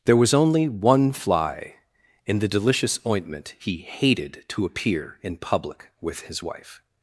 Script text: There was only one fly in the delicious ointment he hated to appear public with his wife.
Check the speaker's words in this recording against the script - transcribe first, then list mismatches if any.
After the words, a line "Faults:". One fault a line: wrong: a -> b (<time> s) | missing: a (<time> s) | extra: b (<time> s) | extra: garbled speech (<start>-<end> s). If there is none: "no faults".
There was only one fly in the delicious ointment he hated to appear in public with his wife.
Faults:
extra: in (5.2 s)